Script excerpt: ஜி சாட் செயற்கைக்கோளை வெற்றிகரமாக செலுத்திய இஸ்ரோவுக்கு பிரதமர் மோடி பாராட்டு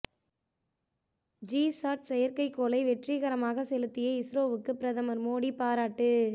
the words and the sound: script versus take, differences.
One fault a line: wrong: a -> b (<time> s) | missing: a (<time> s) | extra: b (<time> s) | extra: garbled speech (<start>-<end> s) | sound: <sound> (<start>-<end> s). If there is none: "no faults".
no faults